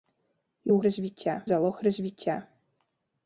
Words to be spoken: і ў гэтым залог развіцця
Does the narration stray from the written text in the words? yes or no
yes